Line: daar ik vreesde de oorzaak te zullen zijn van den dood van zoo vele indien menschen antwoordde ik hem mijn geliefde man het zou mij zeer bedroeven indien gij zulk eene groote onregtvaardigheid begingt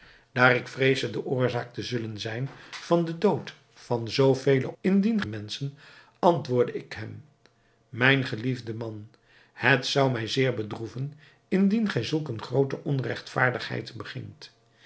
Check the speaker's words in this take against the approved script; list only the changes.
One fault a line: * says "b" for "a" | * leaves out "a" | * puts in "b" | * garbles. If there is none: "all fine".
all fine